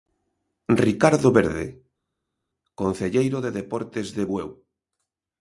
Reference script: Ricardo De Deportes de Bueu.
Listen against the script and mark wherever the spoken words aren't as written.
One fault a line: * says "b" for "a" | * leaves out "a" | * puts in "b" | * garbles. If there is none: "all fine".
* puts in "Verde concelleiro"